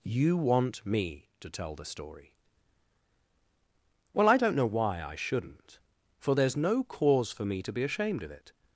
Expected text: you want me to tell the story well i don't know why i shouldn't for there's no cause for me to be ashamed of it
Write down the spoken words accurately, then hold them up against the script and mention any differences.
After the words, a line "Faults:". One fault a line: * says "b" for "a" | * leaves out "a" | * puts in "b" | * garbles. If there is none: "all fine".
you want me to tell the story well i don't know why i shouldn't for there's no cause for me to be ashamed of it
Faults:
all fine